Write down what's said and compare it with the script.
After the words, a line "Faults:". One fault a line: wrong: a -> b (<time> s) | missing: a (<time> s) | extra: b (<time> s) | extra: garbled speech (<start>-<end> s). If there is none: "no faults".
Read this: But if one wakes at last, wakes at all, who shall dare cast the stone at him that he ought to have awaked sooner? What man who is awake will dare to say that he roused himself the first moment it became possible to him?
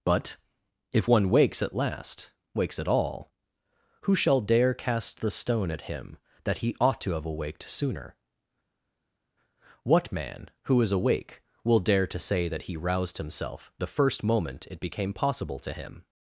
But if one wakes at last, wakes at all, who shall dare cast the stone at him that he ought to have awaked sooner? What man who is awake will dare to say that he roused himself the first moment it became possible to him?
Faults:
no faults